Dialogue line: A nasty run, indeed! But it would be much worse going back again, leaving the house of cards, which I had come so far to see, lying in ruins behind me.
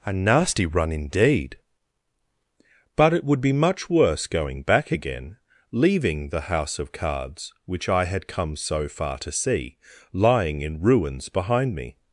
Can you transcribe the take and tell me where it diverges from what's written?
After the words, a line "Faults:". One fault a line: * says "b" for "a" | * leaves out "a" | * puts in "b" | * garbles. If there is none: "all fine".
A nasty run, indeed! But it would be much worse going back again, leaving the house of cards, which I had come so far to see, lying in ruins behind me.
Faults:
all fine